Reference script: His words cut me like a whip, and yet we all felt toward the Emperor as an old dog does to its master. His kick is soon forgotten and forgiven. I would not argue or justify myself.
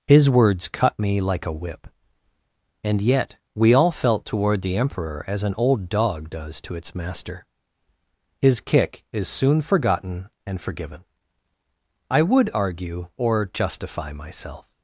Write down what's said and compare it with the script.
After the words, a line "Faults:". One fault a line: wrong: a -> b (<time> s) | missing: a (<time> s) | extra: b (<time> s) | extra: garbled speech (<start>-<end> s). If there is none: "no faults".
His words cut me like a whip, and yet we all felt toward the Emperor as an old dog does to its master. His kick is soon forgotten and forgiven. I would argue or justify myself.
Faults:
missing: not (12.5 s)